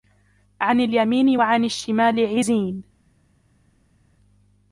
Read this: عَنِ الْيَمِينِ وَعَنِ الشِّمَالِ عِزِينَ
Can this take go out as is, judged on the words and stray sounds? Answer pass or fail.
pass